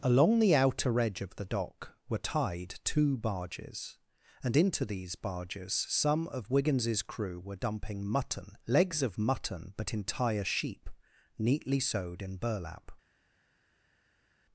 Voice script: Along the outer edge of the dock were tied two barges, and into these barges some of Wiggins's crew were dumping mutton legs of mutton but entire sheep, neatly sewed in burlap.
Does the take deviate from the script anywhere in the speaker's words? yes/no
no